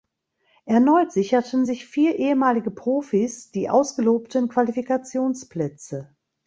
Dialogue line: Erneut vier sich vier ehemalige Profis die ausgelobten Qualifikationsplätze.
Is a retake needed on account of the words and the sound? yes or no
yes